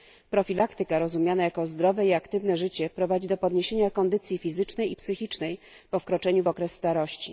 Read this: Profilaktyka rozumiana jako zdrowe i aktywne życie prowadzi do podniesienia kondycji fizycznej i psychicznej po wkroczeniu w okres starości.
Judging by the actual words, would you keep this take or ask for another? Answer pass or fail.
pass